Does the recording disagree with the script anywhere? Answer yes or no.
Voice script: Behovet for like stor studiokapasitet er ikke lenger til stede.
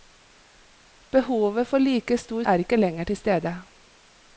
yes